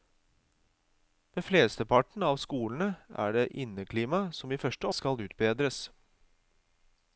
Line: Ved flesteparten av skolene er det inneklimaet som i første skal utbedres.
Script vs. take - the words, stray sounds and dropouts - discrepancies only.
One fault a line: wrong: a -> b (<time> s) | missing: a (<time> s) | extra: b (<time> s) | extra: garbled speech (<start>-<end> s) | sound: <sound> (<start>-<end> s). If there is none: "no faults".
no faults